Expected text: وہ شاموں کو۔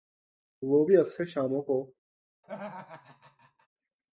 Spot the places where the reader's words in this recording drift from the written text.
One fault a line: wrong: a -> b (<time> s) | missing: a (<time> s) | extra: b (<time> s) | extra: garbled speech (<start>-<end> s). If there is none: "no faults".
extra: بھی اکثر (0.9 s)